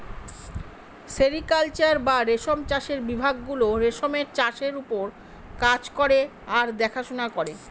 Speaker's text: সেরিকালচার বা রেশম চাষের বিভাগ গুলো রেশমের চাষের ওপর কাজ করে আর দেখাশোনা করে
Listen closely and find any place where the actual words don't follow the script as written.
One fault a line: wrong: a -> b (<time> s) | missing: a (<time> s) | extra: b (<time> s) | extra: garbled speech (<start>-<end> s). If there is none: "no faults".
no faults